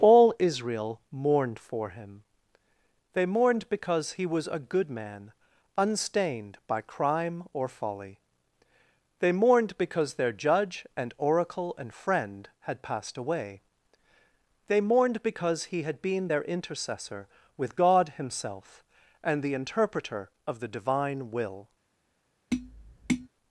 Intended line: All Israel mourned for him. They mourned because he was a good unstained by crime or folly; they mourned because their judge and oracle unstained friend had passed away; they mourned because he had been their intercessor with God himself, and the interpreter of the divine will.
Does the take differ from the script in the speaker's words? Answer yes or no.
yes